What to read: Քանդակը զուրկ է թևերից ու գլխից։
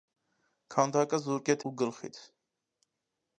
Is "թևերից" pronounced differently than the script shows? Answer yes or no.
yes